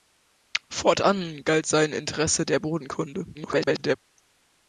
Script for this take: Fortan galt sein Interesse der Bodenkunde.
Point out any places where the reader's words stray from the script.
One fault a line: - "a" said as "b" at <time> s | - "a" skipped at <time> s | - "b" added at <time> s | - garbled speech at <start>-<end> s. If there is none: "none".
- garbled speech at 3.3-4.0 s